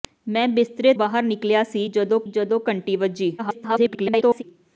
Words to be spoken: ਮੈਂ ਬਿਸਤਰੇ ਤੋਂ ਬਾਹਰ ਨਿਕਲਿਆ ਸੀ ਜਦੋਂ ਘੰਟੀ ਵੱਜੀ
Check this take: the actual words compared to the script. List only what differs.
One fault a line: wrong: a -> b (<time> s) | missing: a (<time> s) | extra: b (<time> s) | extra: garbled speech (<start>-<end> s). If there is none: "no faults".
missing: ਤੋਂ (0.9 s)
extra: ਜਦੋਂ (2.3 s)
extra: garbled speech (3.4-4.4 s)